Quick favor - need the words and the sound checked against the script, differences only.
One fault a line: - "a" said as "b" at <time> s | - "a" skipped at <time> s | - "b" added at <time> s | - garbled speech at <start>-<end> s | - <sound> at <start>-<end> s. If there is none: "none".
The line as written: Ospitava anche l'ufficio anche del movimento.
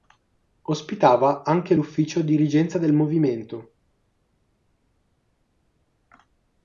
- "anche" said as "dirigenza" at 2.2 s